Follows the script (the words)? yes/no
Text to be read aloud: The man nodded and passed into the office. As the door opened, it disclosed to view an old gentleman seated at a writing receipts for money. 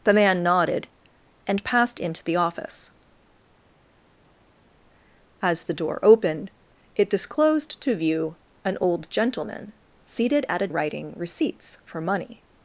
yes